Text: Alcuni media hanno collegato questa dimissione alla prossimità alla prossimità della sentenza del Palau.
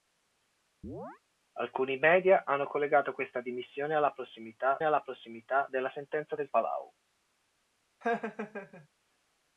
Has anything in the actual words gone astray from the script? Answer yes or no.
no